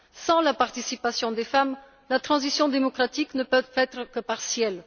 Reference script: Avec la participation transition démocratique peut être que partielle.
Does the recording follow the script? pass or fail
fail